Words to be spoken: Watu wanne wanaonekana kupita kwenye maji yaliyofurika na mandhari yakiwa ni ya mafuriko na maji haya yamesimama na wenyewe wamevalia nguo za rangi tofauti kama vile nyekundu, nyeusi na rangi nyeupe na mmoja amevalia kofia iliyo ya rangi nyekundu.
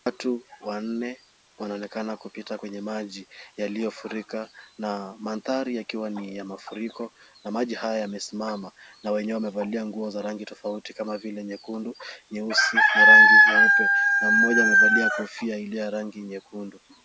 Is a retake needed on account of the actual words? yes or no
no